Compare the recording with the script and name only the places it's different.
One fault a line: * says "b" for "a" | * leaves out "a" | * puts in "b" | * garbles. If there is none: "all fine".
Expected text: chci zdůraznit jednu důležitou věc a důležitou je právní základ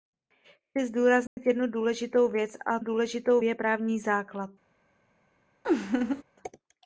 all fine